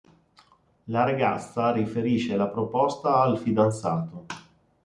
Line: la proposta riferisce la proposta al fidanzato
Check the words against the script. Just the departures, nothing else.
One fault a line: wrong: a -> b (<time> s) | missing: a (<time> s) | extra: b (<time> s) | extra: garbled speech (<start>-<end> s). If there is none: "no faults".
wrong: proposta -> ragazza (1.0 s)